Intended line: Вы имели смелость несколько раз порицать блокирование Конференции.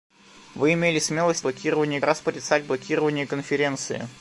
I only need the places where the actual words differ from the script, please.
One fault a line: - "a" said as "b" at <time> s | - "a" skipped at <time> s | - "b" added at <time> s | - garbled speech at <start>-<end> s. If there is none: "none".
- "несколько" said as "блокирование" at 1.4 s